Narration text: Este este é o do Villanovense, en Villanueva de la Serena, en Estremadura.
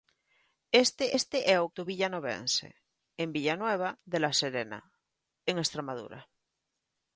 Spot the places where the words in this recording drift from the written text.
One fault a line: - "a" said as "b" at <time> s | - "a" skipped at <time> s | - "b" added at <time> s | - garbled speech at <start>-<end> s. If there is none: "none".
none